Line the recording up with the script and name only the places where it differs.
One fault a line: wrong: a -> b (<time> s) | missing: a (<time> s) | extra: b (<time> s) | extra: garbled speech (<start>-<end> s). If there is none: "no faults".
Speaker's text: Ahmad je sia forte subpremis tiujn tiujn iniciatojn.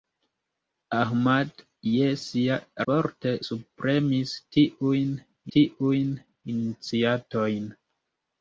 no faults